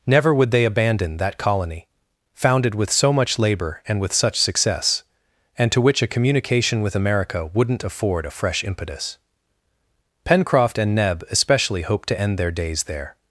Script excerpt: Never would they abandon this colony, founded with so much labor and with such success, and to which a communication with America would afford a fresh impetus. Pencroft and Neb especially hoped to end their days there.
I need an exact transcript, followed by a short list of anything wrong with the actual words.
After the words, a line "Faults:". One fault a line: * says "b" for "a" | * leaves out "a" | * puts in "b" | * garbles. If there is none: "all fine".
Never would they abandon that colony, founded with so much labor and with such success, and to which a communication with America wouldn't afford a fresh impetus. Pencroft and Neb especially hoped to end their days there.
Faults:
* says "that" for "this"
* says "wouldn't" for "would"